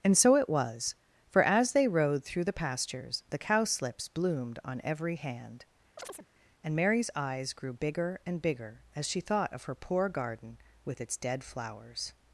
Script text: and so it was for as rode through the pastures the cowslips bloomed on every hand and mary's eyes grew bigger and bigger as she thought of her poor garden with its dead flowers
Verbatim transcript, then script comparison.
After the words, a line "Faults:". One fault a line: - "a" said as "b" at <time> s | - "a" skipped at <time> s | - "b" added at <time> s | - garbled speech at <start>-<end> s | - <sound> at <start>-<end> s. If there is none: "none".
and so it was for as they rode through the pastures the cowslips bloomed on every hand and mary's eyes grew bigger and bigger as she thought of her poor garden with its dead flowers
Faults:
- "they" added at 1.7 s
- chirp at 6.0-6.3 s